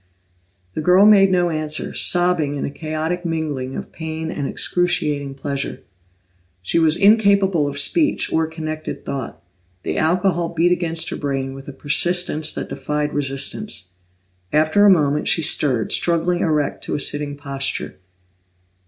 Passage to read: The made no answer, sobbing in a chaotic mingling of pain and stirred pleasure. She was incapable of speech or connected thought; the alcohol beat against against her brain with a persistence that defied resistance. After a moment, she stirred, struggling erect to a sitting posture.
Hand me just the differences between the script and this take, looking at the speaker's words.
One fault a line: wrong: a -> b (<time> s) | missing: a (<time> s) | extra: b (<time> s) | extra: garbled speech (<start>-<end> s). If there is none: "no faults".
extra: girl (0.8 s)
wrong: stirred -> excruciating (4.5 s)
missing: against (11.1 s)